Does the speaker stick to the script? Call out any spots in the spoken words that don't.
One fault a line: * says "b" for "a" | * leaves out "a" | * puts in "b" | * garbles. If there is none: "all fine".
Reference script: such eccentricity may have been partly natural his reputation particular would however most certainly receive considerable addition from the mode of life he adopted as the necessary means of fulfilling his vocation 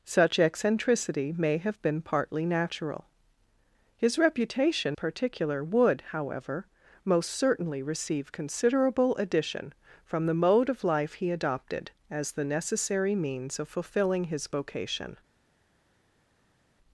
all fine